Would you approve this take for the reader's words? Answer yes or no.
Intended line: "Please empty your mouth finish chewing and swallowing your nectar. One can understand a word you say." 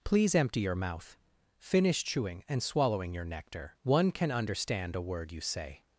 yes